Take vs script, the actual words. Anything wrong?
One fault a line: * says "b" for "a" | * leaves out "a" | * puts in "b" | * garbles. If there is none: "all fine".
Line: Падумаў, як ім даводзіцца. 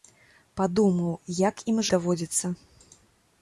all fine